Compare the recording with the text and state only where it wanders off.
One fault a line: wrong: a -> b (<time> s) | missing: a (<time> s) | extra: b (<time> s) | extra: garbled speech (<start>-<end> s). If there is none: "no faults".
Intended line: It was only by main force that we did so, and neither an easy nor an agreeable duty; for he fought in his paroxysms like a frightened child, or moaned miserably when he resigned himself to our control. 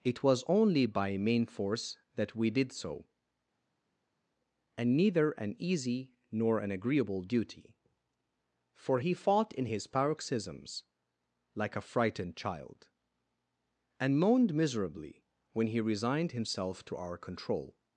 wrong: or -> and (14.0 s)